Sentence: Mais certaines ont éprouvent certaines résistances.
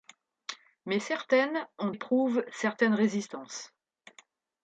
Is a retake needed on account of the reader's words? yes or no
no